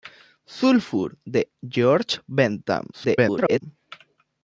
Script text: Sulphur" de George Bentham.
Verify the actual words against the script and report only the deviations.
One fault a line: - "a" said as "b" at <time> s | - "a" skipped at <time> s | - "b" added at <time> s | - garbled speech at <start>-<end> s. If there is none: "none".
- garbled speech at 2.9-3.6 s